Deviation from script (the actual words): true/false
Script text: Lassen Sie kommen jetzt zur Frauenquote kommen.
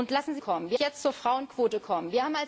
false